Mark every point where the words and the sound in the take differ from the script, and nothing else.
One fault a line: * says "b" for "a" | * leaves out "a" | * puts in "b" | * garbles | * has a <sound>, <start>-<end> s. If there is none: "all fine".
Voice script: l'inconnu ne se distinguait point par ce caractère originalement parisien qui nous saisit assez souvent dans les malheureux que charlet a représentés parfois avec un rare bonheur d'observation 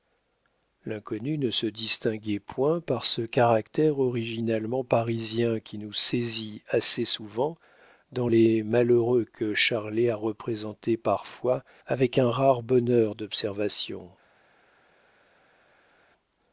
all fine